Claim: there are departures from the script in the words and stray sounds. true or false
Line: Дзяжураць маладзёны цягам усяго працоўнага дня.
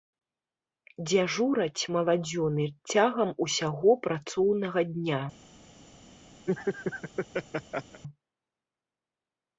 true